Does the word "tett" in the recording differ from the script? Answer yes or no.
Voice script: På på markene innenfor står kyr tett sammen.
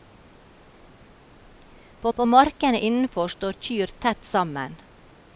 no